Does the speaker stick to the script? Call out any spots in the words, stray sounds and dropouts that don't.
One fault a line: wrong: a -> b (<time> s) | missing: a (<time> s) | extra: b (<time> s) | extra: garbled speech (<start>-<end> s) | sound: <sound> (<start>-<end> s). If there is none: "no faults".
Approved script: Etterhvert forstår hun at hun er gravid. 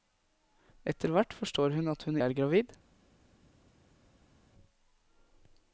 no faults